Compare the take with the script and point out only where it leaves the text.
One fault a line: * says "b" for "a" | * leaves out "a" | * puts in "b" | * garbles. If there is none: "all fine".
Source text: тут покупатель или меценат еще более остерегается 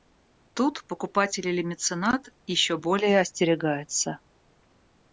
all fine